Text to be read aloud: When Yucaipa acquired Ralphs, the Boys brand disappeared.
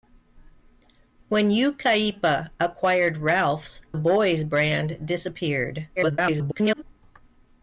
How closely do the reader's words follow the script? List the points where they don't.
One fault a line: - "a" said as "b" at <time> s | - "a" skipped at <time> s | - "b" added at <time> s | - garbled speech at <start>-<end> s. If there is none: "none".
- "the" skipped at 3.8 s
- garbled speech at 6.0-6.8 s